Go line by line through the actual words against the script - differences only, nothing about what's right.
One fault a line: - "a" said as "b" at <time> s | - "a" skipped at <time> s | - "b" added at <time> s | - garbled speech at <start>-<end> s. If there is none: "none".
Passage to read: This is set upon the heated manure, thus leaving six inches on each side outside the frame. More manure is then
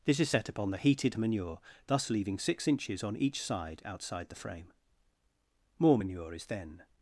none